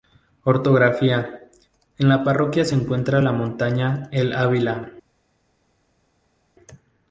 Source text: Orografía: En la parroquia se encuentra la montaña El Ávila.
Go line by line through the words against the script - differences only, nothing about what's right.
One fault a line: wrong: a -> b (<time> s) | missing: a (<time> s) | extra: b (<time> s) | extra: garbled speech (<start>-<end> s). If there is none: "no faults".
no faults